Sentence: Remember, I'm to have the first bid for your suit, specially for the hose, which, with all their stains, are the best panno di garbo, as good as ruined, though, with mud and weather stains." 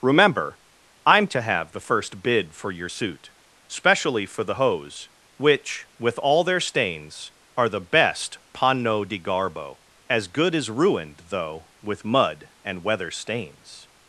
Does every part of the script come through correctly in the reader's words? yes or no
yes